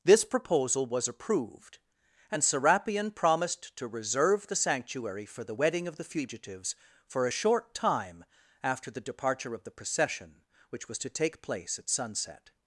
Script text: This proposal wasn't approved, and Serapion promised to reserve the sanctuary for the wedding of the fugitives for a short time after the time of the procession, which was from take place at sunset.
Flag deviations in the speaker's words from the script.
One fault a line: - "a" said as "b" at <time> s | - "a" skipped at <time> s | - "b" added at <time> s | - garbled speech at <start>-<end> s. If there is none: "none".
- "wasn't" said as "was" at 0.9 s
- "time" said as "departure" at 9.0 s
- "from" said as "to" at 11.0 s